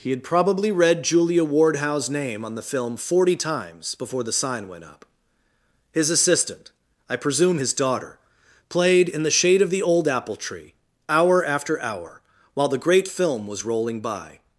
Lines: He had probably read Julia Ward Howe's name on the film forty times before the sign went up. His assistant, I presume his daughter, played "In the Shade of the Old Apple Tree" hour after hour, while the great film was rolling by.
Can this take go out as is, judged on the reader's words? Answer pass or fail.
pass